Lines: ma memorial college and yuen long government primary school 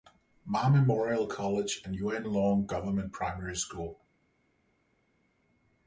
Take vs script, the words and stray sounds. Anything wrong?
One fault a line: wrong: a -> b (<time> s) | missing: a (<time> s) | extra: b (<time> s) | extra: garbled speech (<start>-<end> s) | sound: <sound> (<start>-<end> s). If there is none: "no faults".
no faults